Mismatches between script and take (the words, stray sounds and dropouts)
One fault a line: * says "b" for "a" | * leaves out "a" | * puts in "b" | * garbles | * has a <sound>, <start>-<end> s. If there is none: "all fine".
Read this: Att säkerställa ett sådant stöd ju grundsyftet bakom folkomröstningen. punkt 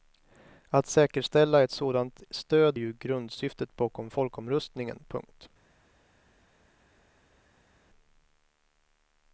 all fine